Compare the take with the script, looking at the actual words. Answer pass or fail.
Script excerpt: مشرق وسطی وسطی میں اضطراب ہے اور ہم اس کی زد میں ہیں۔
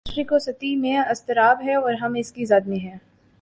fail